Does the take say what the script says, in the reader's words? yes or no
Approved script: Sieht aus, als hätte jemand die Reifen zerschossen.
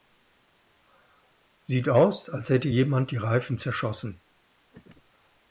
yes